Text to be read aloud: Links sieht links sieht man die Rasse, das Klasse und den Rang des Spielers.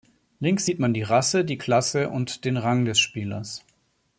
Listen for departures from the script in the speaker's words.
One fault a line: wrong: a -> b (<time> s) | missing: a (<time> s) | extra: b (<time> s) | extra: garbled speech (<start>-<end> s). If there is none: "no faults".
missing: links sieht (0.8 s)
wrong: das -> die (1.4 s)